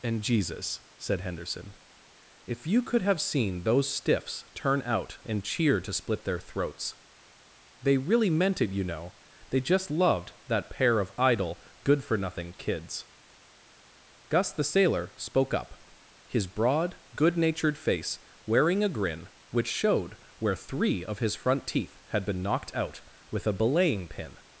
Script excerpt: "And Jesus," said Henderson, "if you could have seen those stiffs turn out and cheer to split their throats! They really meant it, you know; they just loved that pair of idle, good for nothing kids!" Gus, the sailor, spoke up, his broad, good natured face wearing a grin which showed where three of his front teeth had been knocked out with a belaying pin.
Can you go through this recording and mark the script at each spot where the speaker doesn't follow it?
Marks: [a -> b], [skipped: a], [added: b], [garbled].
"And Jesus," said Henderson, "if you could have seen those stiffs turn out and cheer to split their throats! They really meant it, you know; they just loved that pair of idle, good for nothing kids!" Gus, the sailor, spoke up, his broad, good natured face wearing a grin which showed where three of his front teeth had been knocked out with a belaying pin.